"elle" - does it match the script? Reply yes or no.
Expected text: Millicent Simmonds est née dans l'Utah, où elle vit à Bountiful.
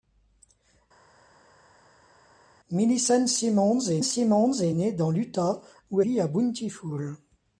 no